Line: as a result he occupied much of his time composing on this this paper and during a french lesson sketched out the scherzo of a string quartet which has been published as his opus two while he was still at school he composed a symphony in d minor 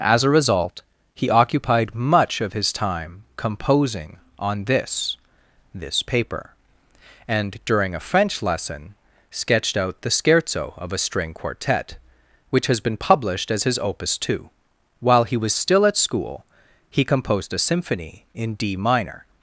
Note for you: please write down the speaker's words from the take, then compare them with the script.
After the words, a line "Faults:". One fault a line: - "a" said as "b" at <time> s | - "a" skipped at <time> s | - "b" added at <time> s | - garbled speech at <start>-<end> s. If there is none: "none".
as a result he occupied much of his time composing on this this paper and during a french lesson sketched out the scherzo of a string quartet which has been published as his opus two while he was still at school he composed a symphony in d minor
Faults:
none